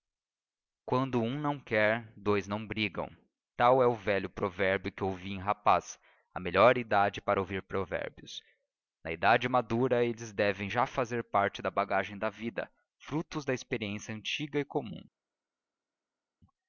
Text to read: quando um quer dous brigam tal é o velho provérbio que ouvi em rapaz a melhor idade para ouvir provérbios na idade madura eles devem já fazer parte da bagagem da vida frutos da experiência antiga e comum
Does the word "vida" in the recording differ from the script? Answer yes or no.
no